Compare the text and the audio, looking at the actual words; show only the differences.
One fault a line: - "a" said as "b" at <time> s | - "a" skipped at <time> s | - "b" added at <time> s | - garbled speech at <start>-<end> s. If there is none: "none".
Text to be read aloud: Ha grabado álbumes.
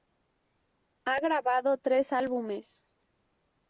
- "tres" added at 1.8 s